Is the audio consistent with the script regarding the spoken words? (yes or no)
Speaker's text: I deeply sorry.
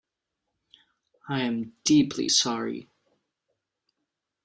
no